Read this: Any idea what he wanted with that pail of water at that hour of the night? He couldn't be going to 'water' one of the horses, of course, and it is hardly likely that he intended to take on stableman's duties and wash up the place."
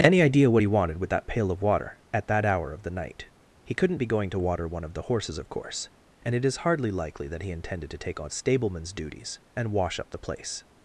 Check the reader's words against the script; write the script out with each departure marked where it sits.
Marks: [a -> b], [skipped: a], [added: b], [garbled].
Any idea what he wanted with that pail of water at that hour of the night? He couldn't be going to 'water' one of the horses, of course, and it is hardly likely that he intended to take on stableman's duties and wash up the place."